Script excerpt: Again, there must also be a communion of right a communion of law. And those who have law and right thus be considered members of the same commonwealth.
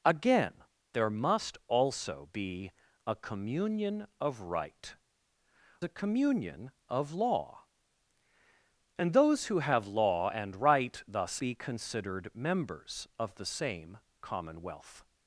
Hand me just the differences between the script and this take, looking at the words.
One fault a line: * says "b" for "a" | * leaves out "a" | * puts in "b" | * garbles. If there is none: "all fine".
all fine